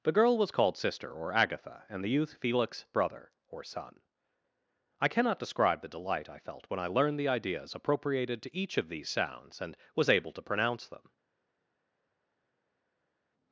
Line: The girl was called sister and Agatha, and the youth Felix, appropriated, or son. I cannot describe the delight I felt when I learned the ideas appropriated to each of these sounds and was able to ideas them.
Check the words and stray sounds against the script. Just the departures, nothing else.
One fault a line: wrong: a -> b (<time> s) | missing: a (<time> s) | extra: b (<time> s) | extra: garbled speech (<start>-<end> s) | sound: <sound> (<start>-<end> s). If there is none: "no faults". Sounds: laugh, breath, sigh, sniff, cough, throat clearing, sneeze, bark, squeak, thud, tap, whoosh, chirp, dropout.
wrong: and -> or (1.1 s)
wrong: appropriated -> brother (2.9 s)
wrong: ideas -> pronounce (10.4 s)